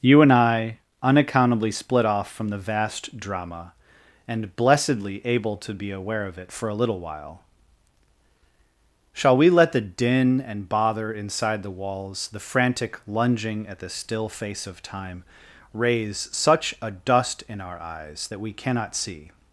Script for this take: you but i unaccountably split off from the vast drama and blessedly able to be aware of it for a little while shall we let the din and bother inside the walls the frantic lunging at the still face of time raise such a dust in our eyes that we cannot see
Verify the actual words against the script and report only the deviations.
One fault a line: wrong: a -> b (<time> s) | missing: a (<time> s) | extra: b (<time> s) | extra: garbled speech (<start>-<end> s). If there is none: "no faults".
wrong: but -> and (0.2 s)